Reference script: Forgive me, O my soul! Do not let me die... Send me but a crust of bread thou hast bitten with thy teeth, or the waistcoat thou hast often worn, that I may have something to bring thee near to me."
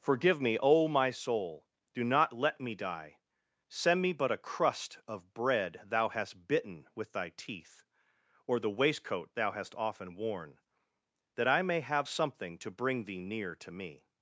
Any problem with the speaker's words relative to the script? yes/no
no